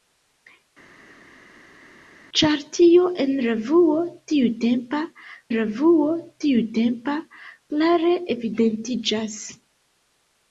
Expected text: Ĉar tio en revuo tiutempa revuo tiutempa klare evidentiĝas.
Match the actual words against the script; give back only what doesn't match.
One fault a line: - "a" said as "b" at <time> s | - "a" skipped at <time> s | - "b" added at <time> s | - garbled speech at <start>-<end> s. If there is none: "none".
none